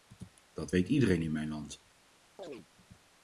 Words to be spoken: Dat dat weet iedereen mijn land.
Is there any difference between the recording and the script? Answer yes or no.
yes